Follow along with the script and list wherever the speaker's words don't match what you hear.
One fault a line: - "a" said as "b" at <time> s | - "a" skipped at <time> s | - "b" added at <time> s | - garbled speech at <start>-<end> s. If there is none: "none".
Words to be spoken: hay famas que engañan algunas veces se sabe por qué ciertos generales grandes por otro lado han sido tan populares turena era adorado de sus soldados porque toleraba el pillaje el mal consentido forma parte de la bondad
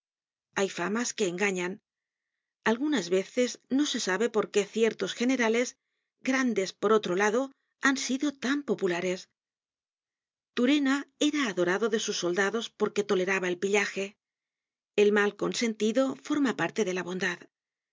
- "no" added at 3.7 s